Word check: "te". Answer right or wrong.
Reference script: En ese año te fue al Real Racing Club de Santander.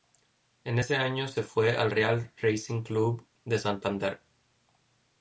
wrong